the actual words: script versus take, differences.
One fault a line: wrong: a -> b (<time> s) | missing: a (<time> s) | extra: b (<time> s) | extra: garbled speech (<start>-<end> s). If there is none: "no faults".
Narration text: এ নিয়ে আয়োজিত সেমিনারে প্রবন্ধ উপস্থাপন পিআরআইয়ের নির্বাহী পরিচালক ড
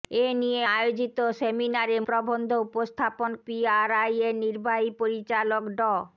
no faults